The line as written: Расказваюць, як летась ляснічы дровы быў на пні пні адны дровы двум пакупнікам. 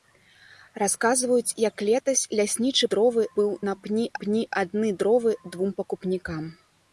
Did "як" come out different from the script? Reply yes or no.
no